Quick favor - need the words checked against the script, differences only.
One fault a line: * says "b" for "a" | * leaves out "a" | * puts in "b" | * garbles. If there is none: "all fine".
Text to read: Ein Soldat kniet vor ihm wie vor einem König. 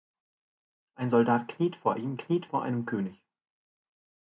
* says "kniet" for "wie"